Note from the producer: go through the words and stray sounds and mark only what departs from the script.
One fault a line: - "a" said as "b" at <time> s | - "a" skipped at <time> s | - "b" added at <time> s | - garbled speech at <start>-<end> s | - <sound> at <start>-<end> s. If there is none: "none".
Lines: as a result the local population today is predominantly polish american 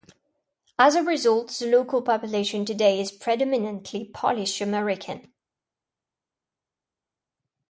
none